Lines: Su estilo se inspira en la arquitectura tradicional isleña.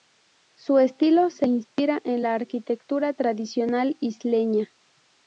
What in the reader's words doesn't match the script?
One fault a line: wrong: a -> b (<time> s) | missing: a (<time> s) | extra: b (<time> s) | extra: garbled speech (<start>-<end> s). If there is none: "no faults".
no faults